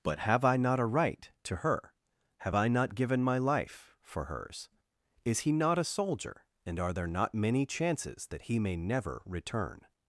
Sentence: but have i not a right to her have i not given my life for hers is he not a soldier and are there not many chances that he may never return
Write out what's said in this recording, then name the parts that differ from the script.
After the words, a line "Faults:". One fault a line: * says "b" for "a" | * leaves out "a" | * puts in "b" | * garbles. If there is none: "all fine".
but have i not a right to her have i not given my life for hers is he not a soldier and are there not many chances that he may never return
Faults:
all fine